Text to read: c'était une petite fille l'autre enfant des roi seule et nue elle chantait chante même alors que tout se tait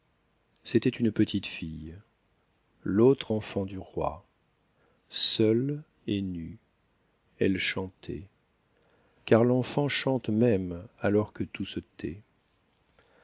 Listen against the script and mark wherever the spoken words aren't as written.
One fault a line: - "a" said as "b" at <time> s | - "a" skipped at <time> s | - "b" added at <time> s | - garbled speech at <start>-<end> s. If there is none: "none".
- "des" said as "du" at 3.7 s
- "car l'enfant" added at 9.3 s